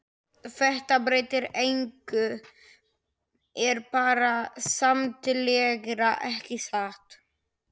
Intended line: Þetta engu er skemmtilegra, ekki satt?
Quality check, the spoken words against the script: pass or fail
fail